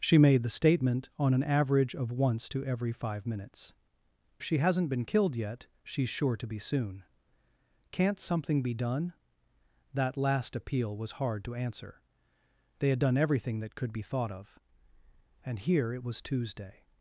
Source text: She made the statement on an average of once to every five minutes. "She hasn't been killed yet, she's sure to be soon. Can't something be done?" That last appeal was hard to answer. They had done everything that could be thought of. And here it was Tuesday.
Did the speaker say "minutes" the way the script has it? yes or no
yes